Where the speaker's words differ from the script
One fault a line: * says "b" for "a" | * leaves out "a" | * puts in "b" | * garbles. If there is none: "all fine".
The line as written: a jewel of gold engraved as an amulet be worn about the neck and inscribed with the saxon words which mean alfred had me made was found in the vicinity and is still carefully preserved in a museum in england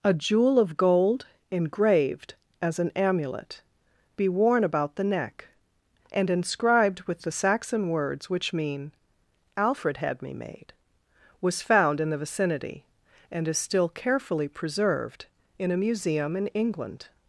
all fine